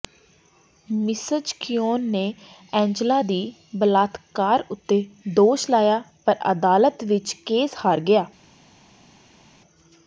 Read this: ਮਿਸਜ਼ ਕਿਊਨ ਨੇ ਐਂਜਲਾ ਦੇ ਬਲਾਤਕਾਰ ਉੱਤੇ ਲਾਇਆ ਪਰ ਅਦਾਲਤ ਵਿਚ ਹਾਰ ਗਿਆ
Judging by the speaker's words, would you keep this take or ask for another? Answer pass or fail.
fail